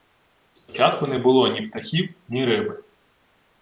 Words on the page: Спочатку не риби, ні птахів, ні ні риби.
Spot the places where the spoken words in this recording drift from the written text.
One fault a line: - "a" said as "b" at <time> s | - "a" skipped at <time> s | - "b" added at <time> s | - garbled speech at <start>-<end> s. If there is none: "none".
- "риби" said as "було" at 1.2 s
- "ні" skipped at 2.5 s